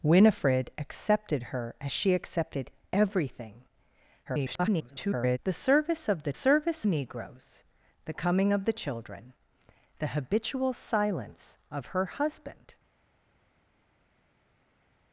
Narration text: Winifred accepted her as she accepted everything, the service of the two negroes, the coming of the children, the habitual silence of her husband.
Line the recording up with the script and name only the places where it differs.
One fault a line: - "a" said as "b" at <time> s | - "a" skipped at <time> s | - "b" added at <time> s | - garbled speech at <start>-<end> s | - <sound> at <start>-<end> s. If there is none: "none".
- garbled speech at 4.3-5.4 s
- "two" said as "service" at 6.3 s